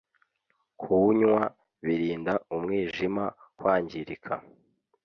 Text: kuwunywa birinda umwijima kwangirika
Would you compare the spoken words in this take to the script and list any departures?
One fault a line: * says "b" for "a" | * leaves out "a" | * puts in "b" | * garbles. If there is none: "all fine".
all fine